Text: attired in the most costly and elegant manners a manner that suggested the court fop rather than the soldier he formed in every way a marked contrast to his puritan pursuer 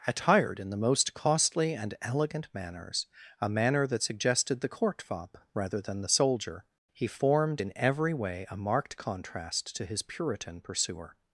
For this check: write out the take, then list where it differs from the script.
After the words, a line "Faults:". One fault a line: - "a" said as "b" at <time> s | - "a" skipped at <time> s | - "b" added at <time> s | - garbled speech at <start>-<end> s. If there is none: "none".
attired in the most costly and elegant manners a manner that suggested the court fop rather than the soldier he formed in every way a marked contrast to his puritan pursuer
Faults:
none